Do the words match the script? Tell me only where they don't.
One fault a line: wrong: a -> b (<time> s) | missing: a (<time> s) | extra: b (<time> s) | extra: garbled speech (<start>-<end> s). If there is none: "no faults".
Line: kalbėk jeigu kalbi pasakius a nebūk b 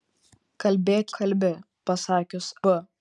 missing: jeigu (1.1 s)
missing: a nebūk (2.5 s)